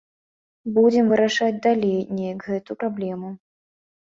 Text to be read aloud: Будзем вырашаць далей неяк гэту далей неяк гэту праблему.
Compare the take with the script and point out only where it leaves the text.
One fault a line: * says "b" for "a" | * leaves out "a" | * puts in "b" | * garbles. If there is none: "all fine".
* leaves out "далей неяк гэту"